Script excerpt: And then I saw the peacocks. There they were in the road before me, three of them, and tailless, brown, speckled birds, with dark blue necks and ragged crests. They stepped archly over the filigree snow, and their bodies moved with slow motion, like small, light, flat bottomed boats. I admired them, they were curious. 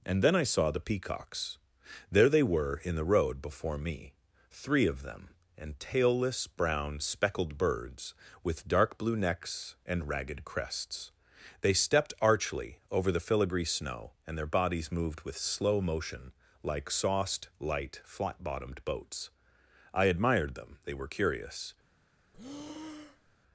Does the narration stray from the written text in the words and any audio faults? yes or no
yes